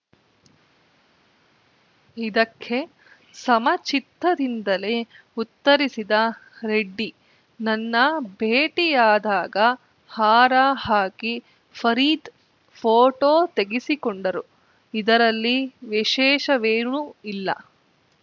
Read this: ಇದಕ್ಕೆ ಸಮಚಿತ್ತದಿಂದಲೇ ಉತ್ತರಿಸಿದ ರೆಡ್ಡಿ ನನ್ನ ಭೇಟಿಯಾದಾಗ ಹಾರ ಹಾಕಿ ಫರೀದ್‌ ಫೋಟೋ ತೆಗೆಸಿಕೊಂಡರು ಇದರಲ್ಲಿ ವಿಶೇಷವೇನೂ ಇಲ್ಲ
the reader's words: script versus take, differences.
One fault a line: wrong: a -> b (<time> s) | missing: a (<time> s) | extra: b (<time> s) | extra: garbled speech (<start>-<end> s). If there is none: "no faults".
no faults